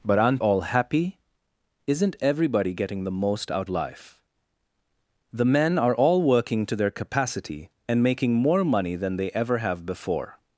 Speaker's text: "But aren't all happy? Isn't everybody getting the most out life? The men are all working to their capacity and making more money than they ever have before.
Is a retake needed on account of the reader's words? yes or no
no